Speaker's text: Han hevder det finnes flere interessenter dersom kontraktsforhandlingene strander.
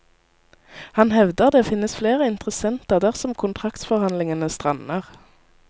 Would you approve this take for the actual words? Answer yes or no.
yes